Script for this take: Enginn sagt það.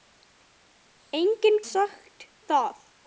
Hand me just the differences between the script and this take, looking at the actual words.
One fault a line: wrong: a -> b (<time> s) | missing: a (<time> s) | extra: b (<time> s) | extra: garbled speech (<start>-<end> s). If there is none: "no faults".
no faults